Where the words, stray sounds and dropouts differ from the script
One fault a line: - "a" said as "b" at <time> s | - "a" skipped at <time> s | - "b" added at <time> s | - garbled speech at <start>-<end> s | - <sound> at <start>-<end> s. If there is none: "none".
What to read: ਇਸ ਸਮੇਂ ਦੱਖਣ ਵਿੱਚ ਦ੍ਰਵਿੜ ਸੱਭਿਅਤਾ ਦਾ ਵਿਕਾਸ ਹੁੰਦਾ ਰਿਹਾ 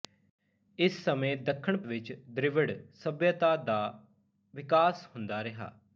none